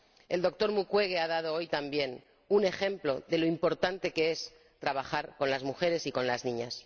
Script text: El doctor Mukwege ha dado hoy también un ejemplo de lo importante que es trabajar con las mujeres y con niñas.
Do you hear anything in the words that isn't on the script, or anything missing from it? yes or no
yes